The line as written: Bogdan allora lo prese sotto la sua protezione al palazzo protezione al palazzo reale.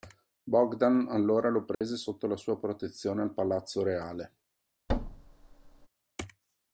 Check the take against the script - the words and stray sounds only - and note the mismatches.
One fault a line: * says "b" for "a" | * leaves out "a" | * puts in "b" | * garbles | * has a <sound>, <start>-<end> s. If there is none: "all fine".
* has a dropout, 1.7-1.8 s
* leaves out "protezione al palazzo"
* has a thud, 4.9-5.9 s